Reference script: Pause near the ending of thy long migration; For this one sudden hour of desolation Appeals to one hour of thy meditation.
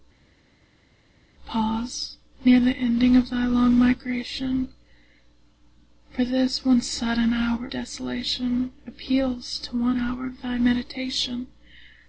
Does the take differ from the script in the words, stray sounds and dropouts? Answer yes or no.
yes